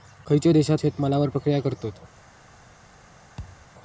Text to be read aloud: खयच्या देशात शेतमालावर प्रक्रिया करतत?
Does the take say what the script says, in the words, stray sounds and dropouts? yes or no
no